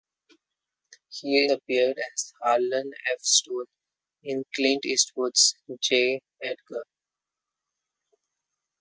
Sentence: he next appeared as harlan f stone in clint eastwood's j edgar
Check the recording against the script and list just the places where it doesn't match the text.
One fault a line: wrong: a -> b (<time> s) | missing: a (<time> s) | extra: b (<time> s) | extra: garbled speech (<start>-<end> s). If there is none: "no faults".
missing: next (1.5 s)